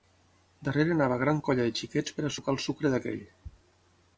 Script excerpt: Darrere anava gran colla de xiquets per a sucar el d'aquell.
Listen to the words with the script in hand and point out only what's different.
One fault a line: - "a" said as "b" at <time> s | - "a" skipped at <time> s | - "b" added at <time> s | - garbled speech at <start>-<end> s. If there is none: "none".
- "sucre" added at 2.7 s